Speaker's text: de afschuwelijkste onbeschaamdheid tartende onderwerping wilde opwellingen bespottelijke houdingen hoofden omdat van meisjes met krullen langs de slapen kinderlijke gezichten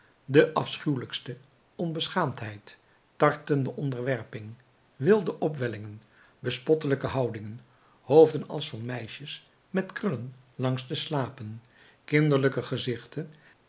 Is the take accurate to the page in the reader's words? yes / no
no